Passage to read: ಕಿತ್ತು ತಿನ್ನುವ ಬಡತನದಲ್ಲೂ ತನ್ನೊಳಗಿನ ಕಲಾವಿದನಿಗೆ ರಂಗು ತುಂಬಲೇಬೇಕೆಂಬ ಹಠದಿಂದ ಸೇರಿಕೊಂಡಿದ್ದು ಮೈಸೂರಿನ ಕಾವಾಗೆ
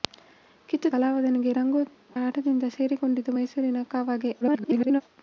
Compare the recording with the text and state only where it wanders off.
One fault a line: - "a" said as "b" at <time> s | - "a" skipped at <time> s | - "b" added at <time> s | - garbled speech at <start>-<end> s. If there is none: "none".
- "ತಿನ್ನುವ ಬಡತನದಲ್ಲೂ ತನ್ನೊಳಗಿನ" skipped at 0.9 s
- "ತುಂಬಲೇಬೇಕೆಂಬ" skipped at 1.8 s
- garbled speech at 4.4-5.0 s